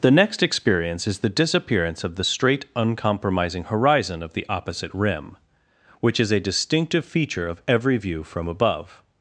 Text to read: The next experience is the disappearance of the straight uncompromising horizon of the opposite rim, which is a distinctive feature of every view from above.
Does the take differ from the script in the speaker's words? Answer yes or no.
no